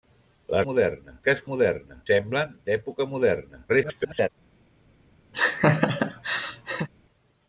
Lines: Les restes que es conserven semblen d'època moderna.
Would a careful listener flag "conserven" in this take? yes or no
yes